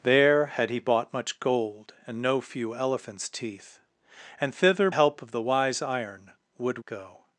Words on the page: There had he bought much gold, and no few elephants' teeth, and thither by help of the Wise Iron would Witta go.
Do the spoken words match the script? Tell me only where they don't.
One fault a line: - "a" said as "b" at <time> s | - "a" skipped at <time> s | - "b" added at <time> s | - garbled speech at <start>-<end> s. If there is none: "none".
- "by" skipped at 4.9 s
- "Witta" skipped at 6.8 s